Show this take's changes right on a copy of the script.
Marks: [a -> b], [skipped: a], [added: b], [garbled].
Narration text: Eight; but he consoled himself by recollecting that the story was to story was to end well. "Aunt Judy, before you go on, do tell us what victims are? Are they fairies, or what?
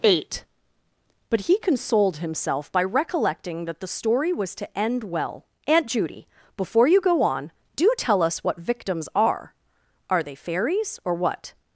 Eight; but he consoled himself by recollecting that the story was to [skipped: story was to] end well. "Aunt Judy, before you go on, do tell us what victims are? Are they fairies, or what?